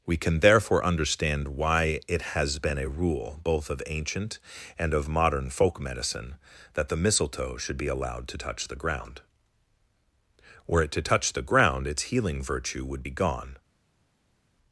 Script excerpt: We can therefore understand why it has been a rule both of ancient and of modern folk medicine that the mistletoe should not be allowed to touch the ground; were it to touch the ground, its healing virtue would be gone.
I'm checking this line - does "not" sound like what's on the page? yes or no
no